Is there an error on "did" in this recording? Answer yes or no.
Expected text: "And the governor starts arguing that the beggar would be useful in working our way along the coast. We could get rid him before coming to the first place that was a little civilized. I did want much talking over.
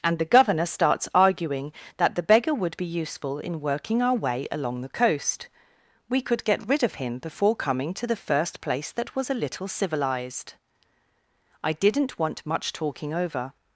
yes